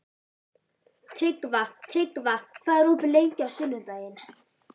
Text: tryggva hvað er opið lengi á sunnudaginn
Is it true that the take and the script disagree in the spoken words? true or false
true